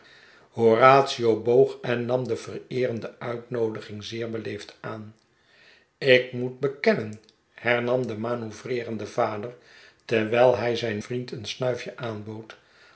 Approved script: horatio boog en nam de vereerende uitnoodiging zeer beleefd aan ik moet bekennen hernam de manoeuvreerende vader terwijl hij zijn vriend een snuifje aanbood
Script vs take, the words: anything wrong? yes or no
no